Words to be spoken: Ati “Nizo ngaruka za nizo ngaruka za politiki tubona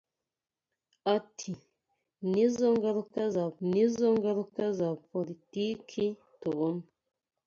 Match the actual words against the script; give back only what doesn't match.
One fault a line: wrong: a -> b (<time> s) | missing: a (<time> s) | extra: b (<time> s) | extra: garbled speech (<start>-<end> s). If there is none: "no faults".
no faults